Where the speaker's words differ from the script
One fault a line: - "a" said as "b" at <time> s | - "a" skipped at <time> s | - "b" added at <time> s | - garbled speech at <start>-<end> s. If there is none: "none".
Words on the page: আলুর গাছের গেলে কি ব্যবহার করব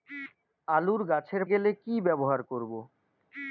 none